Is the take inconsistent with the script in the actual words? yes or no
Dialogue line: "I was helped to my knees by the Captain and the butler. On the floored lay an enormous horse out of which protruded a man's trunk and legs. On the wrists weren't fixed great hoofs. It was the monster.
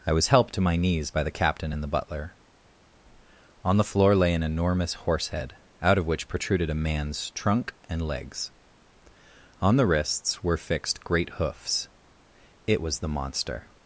yes